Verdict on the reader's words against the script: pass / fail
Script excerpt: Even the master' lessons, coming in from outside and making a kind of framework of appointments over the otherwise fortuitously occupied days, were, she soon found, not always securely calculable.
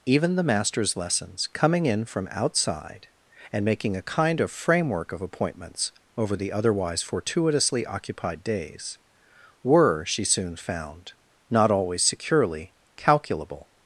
fail